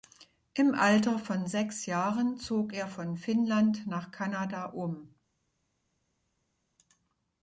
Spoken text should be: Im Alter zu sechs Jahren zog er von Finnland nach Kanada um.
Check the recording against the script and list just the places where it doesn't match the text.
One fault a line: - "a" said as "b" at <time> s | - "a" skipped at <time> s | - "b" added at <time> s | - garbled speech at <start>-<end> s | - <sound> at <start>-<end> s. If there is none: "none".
- "zu" said as "von" at 1.2 s